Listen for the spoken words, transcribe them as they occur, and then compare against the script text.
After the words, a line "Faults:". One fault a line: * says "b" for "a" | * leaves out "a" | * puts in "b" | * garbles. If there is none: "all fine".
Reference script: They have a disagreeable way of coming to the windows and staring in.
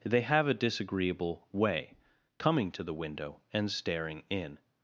They have a disagreeable way coming to the window and staring in.
Faults:
* leaves out "of"
* says "window" for "windows"